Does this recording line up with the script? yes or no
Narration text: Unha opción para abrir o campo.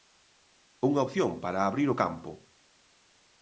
yes